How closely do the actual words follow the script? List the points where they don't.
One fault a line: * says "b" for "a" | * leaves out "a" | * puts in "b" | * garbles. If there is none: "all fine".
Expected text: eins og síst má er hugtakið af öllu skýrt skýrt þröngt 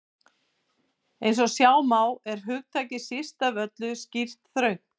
* says "sjá" for "síst"
* puts in "síst"
* leaves out "skýrt"